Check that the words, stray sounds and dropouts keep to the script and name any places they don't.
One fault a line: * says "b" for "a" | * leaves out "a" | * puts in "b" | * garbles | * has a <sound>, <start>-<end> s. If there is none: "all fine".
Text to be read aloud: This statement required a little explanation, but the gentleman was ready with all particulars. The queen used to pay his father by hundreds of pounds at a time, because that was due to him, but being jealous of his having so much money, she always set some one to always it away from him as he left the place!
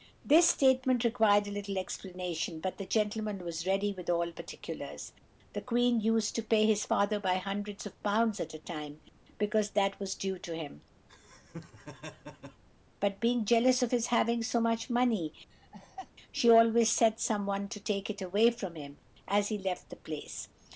* has a laugh, 11.1-12.6 s
* has a laugh, 15.5-16.1 s
* says "take" for "always"